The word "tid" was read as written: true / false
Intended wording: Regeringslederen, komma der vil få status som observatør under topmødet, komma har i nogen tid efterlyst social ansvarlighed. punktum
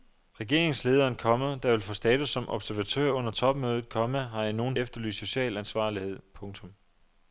false